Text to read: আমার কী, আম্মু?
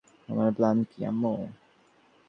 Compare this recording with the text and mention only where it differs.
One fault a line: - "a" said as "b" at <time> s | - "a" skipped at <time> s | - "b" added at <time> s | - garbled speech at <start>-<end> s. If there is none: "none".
- "প্ল্যান" added at 0.5 s